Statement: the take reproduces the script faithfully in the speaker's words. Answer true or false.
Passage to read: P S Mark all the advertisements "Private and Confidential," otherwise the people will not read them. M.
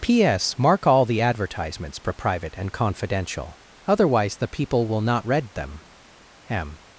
false